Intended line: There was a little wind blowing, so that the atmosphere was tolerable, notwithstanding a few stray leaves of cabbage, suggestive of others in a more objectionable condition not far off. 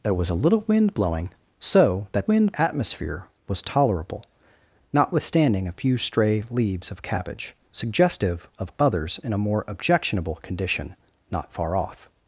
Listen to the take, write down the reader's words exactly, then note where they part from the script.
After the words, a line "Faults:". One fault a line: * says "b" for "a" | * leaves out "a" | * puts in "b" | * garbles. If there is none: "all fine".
There was a little wind blowing, so that wind atmosphere was tolerable, notwithstanding a few stray leaves of cabbage, suggestive of others in a more objectionable condition not far off.
Faults:
* says "wind" for "the"